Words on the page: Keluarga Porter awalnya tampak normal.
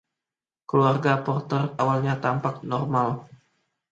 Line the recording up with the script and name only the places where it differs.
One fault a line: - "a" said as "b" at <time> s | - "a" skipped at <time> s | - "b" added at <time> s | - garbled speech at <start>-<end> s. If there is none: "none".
none